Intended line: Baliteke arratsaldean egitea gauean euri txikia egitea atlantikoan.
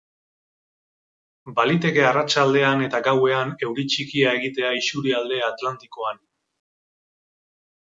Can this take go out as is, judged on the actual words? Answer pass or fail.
fail